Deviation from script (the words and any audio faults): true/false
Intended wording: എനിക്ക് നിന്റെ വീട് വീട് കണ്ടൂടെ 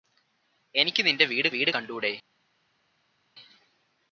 false